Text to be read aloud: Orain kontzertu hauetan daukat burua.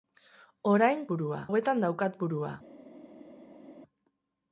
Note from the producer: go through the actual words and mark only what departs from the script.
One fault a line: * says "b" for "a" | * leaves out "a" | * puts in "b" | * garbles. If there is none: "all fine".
* says "burua" for "kontzertu"